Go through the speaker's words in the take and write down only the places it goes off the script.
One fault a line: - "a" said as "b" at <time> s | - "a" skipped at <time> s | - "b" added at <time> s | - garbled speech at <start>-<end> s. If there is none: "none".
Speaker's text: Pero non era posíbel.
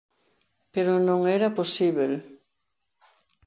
none